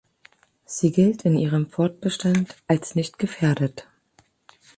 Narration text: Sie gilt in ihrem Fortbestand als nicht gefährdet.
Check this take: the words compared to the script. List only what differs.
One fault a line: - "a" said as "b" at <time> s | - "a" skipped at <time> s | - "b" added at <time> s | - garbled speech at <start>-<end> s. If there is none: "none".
none